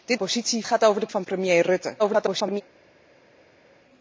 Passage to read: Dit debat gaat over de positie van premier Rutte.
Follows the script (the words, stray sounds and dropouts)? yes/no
no